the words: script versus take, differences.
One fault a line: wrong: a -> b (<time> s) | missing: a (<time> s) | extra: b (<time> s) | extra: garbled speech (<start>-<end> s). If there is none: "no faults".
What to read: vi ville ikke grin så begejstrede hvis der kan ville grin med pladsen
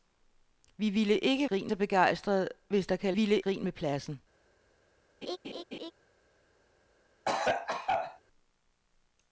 no faults